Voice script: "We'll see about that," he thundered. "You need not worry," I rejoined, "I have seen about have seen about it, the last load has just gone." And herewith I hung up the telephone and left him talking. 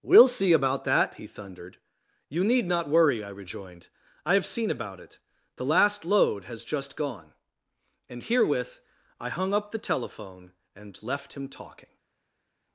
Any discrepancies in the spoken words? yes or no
yes